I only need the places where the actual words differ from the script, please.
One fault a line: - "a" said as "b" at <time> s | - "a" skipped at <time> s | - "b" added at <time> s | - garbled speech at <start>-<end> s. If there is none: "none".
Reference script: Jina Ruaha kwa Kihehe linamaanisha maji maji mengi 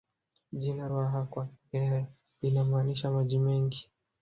- "maji" skipped at 3.4 s